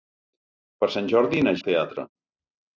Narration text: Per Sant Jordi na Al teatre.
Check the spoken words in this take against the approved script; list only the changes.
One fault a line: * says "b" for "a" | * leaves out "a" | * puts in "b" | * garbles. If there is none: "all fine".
all fine